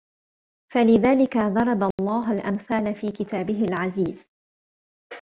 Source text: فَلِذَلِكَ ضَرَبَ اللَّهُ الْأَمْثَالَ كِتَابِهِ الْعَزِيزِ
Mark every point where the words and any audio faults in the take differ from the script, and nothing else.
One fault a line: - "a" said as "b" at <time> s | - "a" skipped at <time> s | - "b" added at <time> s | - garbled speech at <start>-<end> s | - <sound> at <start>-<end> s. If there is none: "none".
- dropout at 1.9-2.0 s
- "فِي" added at 3.0 s